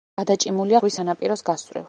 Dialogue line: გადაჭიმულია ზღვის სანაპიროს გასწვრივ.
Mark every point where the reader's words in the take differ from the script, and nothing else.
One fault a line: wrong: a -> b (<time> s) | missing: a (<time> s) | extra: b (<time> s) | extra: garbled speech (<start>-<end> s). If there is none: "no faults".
no faults